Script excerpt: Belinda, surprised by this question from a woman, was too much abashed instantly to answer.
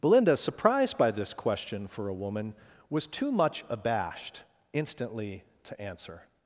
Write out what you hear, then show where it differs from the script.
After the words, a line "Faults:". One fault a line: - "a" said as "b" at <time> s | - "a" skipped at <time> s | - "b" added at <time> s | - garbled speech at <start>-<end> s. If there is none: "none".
Belinda, surprised by this question for a woman, was too much abashed instantly to answer.
Faults:
- "from" said as "for" at 1.9 s